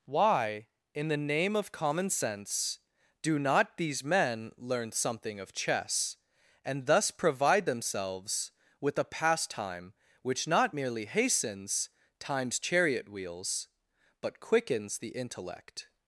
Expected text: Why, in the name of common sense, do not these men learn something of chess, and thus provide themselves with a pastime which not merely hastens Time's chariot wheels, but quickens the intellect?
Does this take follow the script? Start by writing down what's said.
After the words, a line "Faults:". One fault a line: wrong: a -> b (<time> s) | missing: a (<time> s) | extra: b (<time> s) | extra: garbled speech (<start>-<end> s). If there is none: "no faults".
Why, in the name of common sense, do not these men learn something of chess, and thus provide themselves with a pastime which not merely hastens Time's chariot wheels, but quickens the intellect?
Faults:
no faults